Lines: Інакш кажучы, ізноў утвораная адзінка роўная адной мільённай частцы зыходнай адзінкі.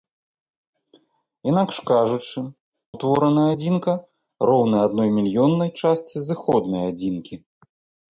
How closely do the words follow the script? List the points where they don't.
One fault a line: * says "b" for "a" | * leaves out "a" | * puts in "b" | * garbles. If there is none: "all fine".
* leaves out "ізноў"